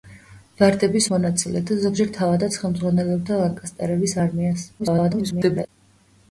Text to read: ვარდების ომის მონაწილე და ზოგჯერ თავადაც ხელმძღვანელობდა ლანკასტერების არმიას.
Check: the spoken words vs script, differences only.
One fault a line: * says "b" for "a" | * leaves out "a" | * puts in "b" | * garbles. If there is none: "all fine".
* leaves out "ომის"
* garbles